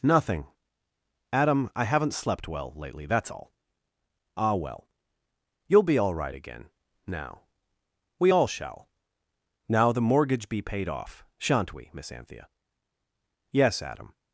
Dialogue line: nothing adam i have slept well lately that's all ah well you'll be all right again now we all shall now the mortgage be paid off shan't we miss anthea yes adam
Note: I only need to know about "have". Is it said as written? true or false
false